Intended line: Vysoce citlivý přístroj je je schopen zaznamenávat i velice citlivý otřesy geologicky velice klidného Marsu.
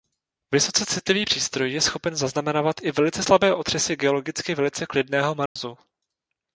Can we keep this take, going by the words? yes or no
no